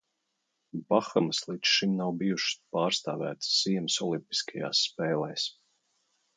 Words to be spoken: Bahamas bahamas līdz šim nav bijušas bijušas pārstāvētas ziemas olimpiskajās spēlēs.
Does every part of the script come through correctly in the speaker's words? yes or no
no